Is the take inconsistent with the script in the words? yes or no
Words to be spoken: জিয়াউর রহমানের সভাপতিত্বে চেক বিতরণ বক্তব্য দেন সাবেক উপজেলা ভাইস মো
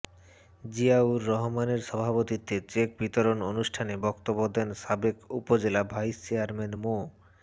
yes